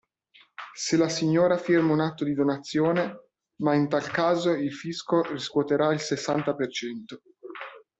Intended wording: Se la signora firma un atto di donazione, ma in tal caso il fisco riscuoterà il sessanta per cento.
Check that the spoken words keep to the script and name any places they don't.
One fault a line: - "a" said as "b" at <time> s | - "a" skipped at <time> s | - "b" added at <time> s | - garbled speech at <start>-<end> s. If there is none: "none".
none